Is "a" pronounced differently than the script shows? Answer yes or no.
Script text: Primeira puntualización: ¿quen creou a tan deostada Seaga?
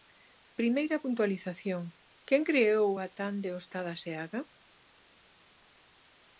no